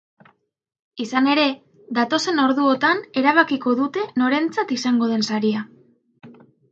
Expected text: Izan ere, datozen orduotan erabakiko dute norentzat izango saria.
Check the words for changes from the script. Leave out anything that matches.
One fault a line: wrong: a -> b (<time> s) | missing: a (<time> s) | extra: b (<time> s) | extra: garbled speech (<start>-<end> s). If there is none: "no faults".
extra: den (5.1 s)